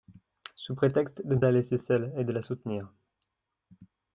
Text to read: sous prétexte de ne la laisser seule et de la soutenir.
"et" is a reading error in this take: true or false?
false